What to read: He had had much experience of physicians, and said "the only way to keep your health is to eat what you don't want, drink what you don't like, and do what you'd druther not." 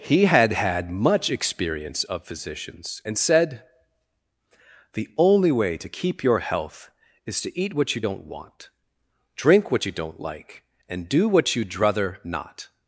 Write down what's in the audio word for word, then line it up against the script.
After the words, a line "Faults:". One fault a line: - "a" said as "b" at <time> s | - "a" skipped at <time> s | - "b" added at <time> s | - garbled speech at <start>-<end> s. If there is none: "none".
He had had much experience of physicians, and said "the only way to keep your health is to eat what you don't want, drink what you don't like, and do what you'd druther not."
Faults:
none